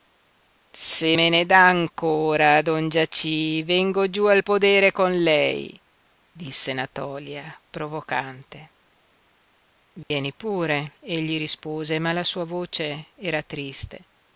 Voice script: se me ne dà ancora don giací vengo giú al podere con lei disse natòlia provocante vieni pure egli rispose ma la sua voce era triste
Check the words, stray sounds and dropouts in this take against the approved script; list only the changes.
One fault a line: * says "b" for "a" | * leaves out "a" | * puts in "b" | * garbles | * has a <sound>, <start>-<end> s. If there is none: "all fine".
* has a dropout, 10.0-10.1 s